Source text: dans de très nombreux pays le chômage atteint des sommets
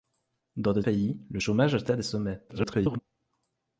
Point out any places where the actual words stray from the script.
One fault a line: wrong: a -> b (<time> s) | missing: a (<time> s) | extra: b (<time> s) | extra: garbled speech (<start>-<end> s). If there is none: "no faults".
missing: très nombreux (0.8 s)
extra: garbled speech (2.5-3.0 s)